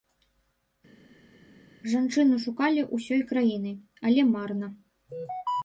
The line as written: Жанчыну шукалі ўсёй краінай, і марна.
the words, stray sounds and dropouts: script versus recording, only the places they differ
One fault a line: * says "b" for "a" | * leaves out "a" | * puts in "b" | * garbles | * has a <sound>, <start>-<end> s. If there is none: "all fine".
* says "але" for "і"